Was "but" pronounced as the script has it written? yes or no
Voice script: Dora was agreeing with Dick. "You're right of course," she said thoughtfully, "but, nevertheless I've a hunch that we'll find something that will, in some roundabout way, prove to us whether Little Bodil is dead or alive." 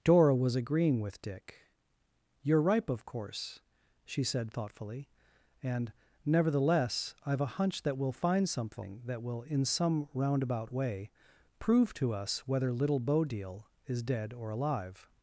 no